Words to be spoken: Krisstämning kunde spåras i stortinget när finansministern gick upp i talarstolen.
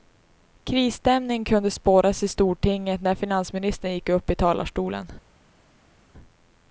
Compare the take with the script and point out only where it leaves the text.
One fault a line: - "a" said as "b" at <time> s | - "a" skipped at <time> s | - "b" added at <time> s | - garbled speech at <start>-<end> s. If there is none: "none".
none